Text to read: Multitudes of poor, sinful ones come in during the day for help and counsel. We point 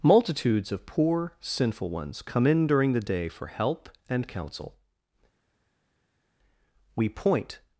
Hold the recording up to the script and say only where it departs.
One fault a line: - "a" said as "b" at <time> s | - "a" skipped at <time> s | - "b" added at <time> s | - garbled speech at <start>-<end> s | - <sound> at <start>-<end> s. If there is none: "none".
none